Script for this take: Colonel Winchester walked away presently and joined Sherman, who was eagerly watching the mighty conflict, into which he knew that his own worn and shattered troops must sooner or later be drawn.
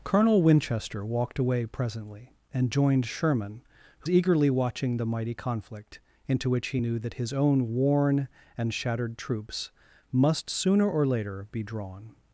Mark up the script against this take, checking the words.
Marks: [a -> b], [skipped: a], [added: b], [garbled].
Colonel Winchester walked away presently and joined Sherman, who [skipped: was] eagerly watching the mighty conflict, into which he knew that his own worn and shattered troops must sooner or later be drawn.